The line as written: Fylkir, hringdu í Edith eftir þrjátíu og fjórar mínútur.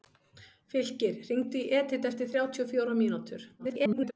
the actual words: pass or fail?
fail